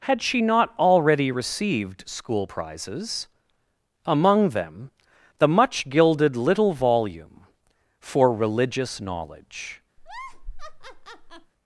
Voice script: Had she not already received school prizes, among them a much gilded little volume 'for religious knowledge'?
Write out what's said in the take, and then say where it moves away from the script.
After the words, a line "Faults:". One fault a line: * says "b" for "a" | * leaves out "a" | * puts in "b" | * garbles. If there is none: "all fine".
Had she not already received school prizes, among them the much gilded little volume 'for religious knowledge'?
Faults:
* says "the" for "a"